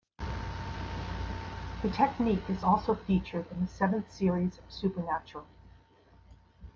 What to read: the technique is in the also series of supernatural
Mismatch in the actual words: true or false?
true